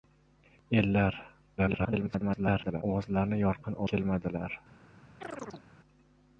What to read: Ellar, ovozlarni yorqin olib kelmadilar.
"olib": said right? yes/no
no